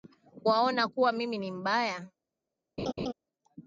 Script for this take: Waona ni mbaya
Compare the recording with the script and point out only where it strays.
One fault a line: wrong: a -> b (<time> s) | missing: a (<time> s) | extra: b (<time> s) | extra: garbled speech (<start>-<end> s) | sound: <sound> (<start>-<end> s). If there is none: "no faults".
extra: kuwa mimi (0.9 s)
sound: laugh (2.8-3.1 s)